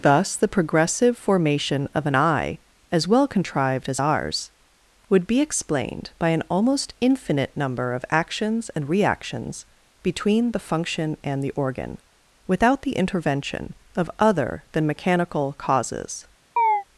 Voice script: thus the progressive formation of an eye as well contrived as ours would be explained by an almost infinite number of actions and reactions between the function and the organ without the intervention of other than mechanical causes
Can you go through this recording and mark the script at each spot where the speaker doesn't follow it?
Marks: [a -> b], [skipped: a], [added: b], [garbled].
thus the progressive formation of an eye as well contrived as ours would be explained by an almost infinite number of actions and reactions between the function and the organ without the intervention of other than mechanical causes